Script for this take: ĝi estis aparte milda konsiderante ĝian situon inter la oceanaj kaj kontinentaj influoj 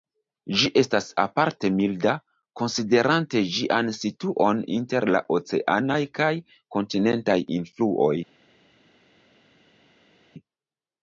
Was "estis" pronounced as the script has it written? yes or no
no